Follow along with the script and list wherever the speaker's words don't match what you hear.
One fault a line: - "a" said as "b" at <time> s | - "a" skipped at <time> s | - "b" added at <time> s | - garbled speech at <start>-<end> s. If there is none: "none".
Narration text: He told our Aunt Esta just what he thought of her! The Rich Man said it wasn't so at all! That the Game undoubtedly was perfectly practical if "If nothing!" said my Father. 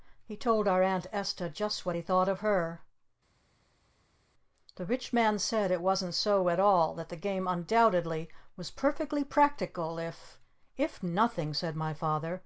none